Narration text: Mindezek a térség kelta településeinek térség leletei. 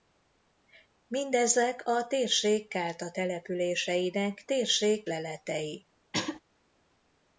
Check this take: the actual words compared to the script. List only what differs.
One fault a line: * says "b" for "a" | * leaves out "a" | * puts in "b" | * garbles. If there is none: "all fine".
all fine